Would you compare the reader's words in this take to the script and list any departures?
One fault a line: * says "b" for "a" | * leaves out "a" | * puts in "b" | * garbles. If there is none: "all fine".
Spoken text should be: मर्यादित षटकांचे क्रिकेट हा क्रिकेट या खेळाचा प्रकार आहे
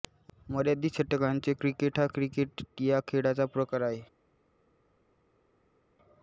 all fine